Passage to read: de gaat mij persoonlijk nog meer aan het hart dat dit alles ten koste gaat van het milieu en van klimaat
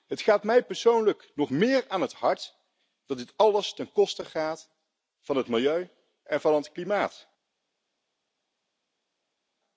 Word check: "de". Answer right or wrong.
wrong